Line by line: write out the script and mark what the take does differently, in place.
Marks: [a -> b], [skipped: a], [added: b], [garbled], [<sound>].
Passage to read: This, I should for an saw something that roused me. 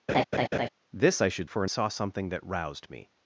[laugh] This, I should for an saw something that roused me.